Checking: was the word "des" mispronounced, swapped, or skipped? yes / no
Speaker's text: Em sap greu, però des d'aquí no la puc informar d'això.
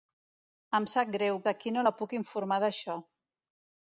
yes